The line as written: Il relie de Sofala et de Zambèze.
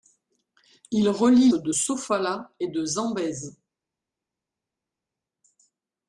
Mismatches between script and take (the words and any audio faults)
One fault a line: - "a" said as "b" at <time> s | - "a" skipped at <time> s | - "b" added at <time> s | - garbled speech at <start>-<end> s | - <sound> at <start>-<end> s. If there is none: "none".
none